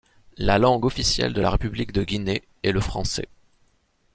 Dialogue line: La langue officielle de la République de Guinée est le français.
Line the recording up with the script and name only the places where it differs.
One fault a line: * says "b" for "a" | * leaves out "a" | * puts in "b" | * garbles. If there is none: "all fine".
all fine